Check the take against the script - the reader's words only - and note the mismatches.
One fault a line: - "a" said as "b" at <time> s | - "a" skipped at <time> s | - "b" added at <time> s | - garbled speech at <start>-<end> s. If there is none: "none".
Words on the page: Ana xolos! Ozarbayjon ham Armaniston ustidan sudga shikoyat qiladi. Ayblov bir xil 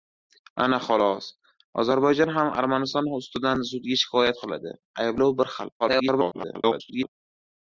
- garbled speech at 5.8-7.1 s